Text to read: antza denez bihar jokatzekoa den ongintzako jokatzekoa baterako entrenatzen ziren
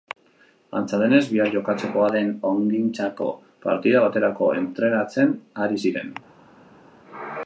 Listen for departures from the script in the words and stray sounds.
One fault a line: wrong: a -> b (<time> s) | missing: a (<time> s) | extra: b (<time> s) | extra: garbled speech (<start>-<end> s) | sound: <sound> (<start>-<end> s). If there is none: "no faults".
wrong: jokatzekoa -> partida (3.7 s)
extra: ari (5.7 s)